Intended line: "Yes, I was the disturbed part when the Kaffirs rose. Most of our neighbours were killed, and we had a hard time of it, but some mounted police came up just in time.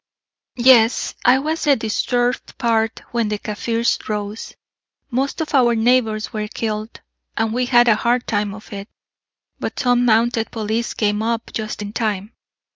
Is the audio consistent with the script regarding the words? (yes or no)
yes